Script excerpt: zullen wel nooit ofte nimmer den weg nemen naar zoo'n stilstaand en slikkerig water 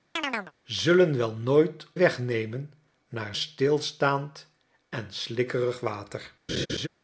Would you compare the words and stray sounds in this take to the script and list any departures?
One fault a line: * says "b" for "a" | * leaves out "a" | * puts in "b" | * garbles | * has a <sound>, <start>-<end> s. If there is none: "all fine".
* has a chirp, 0.2-0.5 s
* leaves out "ofte nimmer den"
* leaves out "zoo'n"
* has a laugh, 6.5-6.9 s